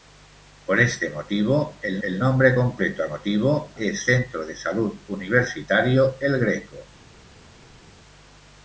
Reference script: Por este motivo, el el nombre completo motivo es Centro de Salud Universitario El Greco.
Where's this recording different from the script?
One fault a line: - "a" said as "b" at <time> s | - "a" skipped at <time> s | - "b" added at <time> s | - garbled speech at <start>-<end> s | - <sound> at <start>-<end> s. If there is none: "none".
none